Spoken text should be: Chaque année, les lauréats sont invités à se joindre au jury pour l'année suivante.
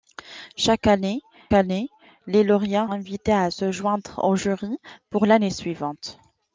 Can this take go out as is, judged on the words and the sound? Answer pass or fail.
fail